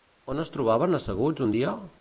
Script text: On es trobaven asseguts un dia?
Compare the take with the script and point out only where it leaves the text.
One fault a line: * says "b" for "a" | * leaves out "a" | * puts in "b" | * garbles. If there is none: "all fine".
all fine